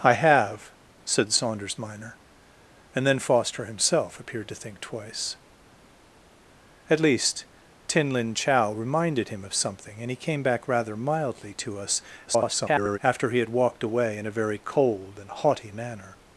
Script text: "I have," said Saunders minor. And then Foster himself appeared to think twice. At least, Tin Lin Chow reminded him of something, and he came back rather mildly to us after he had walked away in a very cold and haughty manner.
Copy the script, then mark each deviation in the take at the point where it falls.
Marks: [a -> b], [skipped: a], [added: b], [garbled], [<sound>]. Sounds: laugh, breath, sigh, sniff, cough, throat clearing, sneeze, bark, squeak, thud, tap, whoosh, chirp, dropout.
"I have," said Saunders minor. And then Foster himself appeared to think twice. At least, Tin Lin Chow reminded him of something, and he came back rather mildly to us [garbled] after he had walked away in a very cold and haughty manner.